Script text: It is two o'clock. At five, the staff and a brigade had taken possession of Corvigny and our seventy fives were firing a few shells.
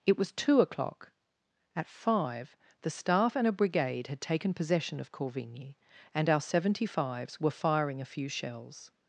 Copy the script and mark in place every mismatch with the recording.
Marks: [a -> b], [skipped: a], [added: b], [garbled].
It [is -> was] two o'clock. At five, the staff and a brigade had taken possession of Corvigny and our seventy fives were firing a few shells.